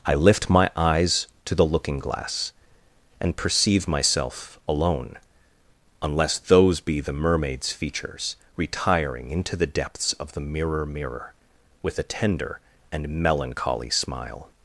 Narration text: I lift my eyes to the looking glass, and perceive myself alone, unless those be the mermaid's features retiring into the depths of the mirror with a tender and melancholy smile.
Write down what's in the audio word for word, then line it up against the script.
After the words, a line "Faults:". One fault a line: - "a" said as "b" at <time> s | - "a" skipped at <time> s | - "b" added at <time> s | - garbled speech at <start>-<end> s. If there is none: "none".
I lift my eyes to the looking glass, and perceive myself alone, unless those be the mermaid's features retiring into the depths of the mirror mirror with a tender and melancholy smile.
Faults:
- "mirror" added at 10.9 s